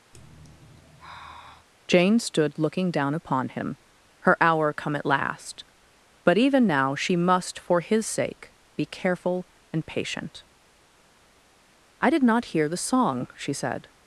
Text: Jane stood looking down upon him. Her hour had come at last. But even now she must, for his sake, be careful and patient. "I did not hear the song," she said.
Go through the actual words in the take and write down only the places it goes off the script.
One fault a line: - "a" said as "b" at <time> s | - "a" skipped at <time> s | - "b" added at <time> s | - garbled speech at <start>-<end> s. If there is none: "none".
- "had" skipped at 4.7 s